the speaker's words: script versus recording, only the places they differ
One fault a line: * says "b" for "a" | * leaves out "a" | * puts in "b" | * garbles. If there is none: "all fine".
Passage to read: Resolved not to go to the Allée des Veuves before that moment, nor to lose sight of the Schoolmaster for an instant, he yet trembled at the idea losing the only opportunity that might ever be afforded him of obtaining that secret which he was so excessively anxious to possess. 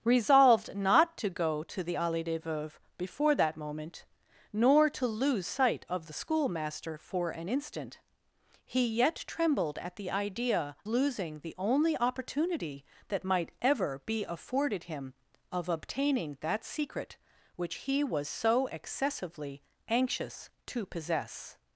all fine